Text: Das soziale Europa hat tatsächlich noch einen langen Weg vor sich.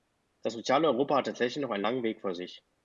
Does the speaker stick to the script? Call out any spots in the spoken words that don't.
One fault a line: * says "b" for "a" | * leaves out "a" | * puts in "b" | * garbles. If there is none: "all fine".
all fine